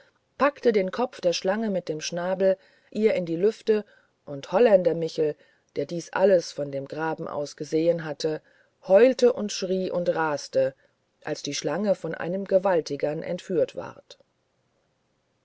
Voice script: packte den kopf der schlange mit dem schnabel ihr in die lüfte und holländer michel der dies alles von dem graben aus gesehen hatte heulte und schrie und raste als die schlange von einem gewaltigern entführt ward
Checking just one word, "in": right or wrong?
right